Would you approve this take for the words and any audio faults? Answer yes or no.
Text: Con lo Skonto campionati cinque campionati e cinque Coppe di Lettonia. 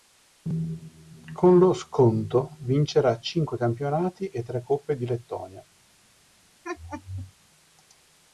no